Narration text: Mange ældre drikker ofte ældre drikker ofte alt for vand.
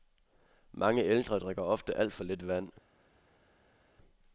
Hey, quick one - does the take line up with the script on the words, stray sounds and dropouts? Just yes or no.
no